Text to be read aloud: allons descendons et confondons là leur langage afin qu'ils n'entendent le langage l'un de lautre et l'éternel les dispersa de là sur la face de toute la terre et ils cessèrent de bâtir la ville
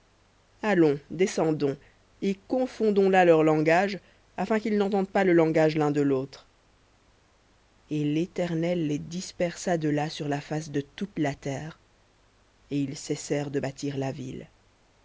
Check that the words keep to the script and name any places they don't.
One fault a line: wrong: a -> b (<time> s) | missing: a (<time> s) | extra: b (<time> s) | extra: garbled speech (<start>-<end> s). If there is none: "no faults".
extra: pas (5.1 s)